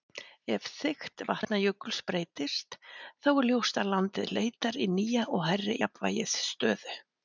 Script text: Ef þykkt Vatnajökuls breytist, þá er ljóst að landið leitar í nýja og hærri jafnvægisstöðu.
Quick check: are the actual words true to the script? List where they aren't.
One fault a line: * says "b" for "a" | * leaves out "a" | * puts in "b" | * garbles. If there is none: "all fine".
all fine